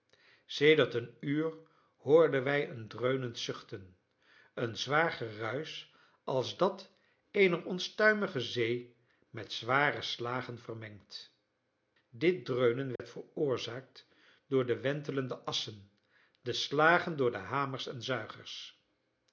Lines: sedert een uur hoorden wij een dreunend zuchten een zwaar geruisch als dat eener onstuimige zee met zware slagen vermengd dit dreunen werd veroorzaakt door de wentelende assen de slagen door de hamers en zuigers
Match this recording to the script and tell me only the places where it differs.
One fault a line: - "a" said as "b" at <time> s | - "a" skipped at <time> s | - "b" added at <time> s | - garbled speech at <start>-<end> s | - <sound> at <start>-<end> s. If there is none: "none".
- dropout at 13.0-13.0 s